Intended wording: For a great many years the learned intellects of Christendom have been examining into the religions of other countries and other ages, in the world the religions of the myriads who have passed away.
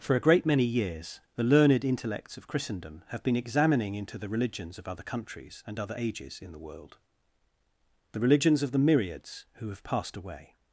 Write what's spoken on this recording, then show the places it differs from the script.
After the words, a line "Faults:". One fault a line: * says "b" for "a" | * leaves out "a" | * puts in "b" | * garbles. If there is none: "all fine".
For a great many years the learned intellects of Christendom have been examining into the religions of other countries and other ages, in the world the religions of the myriads who have passed away.
Faults:
all fine